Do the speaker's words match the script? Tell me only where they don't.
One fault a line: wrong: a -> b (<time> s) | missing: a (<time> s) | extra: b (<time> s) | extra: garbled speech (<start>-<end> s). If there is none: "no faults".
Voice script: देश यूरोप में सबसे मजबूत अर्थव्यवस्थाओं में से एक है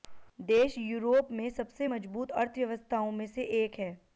no faults